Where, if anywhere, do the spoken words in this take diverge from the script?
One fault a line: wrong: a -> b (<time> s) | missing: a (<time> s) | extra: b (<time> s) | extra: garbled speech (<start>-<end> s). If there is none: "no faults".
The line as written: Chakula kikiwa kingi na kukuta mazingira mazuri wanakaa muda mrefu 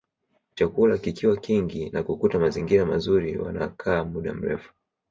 no faults